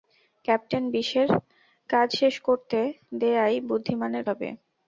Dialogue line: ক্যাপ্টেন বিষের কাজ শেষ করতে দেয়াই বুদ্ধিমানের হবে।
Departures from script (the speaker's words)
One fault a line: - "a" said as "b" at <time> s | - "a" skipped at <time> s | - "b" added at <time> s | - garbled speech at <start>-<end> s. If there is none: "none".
none